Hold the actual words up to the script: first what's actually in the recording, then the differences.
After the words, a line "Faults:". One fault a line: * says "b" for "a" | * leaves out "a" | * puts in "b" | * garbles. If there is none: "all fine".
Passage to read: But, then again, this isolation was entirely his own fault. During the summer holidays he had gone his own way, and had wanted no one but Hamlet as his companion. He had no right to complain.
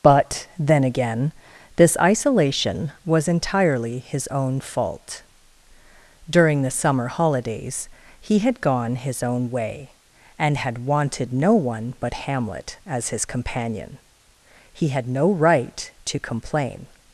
But, then again, this isolation was entirely his own fault. During the summer holidays he had gone his own way, and had wanted no one but Hamlet as his companion. He had no right to complain.
Faults:
all fine